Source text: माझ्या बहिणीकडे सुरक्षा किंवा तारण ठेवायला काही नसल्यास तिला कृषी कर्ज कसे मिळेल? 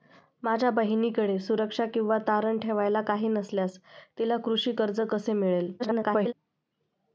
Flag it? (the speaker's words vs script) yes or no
yes